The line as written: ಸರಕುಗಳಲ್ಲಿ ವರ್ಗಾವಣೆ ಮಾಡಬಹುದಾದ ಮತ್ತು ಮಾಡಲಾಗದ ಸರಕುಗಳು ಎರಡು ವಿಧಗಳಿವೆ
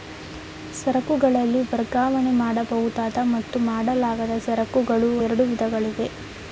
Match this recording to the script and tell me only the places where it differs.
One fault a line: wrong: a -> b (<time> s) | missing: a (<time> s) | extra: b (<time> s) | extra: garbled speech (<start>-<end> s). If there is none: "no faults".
no faults